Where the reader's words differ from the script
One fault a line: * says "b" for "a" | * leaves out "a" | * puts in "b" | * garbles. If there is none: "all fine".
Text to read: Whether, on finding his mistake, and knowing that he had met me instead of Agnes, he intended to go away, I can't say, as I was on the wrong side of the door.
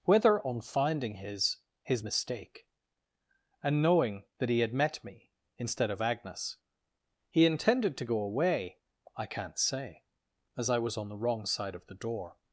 * puts in "his"